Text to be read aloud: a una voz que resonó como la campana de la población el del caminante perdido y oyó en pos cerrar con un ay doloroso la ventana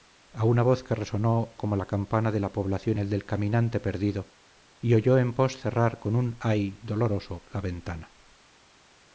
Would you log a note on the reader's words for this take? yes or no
no